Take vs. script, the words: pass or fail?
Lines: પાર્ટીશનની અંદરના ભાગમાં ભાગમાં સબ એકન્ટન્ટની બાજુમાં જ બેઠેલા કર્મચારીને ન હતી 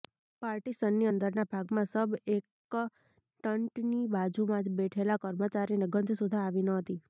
fail